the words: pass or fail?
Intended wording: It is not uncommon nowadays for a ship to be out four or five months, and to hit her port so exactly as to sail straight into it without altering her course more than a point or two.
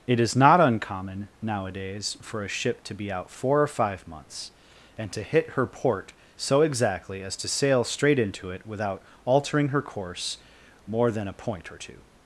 pass